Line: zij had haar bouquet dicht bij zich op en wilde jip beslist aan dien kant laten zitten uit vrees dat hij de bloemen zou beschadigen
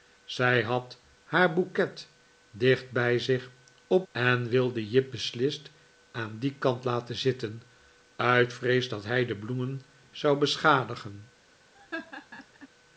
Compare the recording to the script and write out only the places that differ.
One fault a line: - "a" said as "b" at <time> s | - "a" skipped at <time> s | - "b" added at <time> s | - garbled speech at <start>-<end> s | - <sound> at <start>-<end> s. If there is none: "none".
- laugh at 11.7-12.7 s